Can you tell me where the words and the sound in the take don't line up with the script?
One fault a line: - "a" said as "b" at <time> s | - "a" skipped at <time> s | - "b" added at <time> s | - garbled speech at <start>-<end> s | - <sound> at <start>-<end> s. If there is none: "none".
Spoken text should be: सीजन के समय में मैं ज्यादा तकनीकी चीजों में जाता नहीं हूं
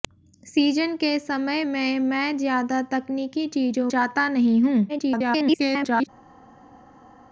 - "में" skipped at 3.9 s
- garbled speech at 4.9-6.1 s